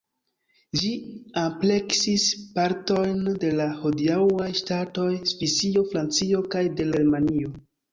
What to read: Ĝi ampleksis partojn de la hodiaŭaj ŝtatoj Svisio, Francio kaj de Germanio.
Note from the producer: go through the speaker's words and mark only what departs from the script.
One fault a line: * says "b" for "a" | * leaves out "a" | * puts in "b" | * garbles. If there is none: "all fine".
all fine